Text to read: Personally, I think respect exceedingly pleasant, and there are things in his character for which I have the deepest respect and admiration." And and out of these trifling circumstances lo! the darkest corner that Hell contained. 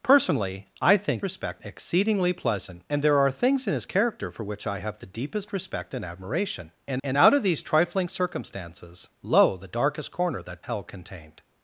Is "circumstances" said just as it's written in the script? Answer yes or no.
yes